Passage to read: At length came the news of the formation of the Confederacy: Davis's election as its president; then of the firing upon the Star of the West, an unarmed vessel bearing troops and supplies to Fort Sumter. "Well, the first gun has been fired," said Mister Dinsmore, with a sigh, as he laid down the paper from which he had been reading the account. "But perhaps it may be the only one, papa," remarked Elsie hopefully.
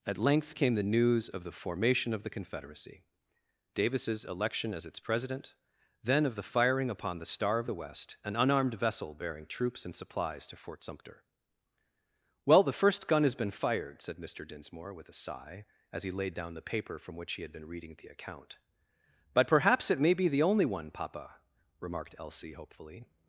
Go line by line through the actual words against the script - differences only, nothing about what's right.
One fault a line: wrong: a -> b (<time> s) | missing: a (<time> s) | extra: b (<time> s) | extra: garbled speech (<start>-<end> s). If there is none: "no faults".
no faults